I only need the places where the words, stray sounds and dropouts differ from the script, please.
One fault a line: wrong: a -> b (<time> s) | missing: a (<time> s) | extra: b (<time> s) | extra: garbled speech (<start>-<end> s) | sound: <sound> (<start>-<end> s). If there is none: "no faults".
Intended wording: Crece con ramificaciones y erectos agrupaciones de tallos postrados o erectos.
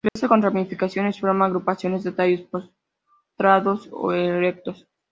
sound: dropout (0.1-0.2 s)
wrong: erectos -> forma (1.2 s)